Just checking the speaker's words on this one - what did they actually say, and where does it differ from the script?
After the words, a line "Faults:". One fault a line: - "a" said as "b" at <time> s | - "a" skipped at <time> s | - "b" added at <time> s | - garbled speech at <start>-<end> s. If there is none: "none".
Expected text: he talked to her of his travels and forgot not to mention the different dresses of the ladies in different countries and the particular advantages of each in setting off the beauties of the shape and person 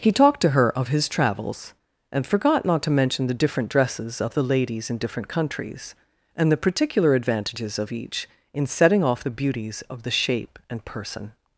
he talked to her of his travels and forgot not to mention the different dresses of the ladies in different countries and the particular advantages of each in setting off the beauties of the shape and person
Faults:
none